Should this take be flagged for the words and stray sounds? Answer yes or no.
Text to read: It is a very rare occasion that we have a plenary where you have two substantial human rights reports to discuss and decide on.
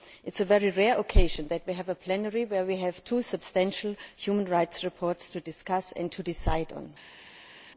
yes